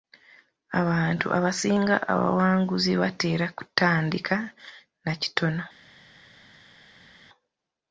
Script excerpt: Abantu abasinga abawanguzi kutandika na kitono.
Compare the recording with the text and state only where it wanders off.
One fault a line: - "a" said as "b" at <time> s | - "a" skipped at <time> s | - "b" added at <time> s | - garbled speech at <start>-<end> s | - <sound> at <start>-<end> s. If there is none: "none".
- "batera" added at 3.0 s